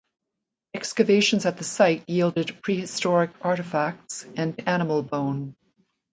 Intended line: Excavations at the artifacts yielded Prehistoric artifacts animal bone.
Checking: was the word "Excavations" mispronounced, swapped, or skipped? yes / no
no